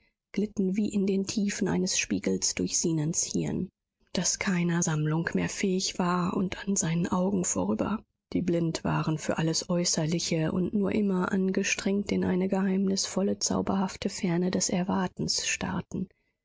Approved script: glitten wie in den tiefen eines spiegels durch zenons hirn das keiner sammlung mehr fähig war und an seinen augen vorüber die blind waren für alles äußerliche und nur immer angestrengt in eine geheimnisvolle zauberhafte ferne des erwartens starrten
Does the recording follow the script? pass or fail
pass